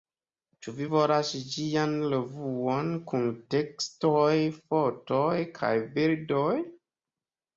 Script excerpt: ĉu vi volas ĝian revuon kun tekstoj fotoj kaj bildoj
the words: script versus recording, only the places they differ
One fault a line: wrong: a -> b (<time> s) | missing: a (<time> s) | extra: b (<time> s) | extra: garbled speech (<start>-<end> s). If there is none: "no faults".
no faults